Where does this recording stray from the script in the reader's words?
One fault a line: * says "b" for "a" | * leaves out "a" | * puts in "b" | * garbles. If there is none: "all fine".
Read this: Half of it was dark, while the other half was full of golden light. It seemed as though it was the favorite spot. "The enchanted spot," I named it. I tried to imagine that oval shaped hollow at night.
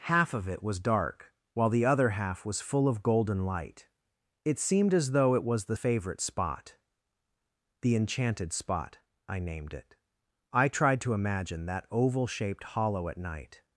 all fine